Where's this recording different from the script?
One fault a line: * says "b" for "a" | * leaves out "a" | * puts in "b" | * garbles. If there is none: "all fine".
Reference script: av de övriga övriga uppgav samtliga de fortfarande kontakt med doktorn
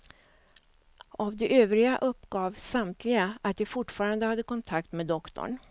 * leaves out "övriga"
* puts in "att"
* puts in "hade"